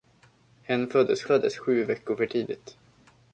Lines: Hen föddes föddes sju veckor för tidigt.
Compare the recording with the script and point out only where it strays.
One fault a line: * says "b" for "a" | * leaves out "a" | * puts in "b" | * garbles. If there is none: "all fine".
all fine